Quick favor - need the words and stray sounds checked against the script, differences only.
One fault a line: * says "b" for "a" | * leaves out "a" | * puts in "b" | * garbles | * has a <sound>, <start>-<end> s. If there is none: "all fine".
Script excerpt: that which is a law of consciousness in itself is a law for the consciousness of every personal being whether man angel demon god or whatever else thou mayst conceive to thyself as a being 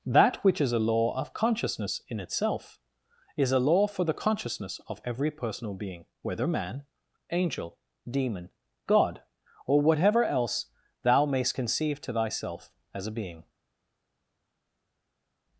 all fine